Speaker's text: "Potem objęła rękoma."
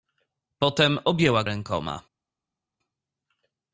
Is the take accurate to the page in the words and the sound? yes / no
yes